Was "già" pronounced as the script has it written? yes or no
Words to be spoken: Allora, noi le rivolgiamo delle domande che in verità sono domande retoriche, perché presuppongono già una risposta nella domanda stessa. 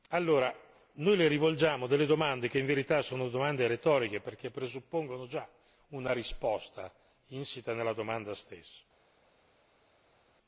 yes